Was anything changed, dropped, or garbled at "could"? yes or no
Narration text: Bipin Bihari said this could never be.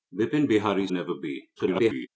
yes